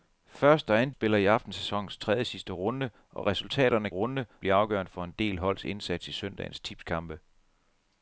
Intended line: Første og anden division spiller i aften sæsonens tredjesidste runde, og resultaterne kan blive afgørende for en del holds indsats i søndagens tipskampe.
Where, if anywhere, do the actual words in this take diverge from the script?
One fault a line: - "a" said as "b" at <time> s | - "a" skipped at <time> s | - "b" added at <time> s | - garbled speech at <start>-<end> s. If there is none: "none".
- "division" skipped at 0.9 s
- "kan" said as "runde" at 3.9 s